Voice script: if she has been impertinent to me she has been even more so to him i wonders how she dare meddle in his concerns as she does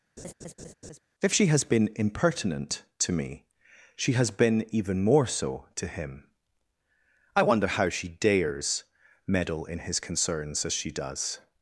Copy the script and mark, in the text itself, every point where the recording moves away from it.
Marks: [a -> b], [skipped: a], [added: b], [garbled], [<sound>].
[laugh] if she has been impertinent to me she has been even more so to him i [wonders -> wonder] how she [dare -> dares] meddle in his concerns as she does